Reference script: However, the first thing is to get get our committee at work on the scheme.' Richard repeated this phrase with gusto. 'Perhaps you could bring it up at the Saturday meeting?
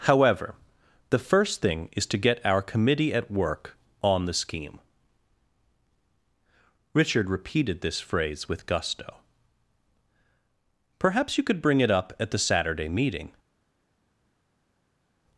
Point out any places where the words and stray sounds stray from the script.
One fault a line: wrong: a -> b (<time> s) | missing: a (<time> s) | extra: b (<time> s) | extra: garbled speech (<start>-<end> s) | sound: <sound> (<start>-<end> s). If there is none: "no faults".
missing: get (2.4 s)